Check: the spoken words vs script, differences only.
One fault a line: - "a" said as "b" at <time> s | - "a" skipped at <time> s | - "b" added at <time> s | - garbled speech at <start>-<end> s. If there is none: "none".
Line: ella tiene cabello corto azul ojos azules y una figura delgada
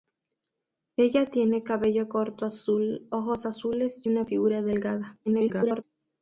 - garbled speech at 5.3-5.8 s